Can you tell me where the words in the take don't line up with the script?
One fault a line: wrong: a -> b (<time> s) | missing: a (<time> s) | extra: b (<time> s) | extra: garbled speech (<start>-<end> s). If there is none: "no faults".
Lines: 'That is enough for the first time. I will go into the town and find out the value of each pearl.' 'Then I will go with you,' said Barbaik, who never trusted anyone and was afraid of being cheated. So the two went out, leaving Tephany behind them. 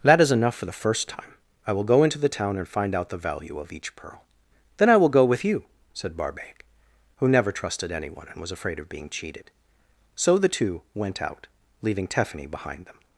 no faults